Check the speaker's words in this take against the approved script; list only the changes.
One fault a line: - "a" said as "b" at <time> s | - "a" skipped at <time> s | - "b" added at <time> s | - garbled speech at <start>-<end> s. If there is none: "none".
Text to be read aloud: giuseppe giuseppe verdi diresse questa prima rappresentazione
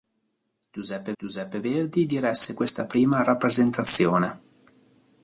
none